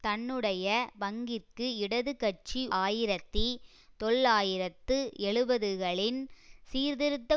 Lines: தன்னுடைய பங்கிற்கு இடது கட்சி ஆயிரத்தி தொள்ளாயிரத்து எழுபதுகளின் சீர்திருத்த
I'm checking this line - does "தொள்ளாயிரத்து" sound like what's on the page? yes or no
yes